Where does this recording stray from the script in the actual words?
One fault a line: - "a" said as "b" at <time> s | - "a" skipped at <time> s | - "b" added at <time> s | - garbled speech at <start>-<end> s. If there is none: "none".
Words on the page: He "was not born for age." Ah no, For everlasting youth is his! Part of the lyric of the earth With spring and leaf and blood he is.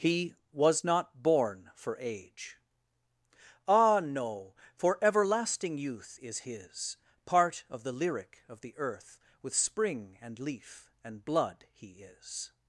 none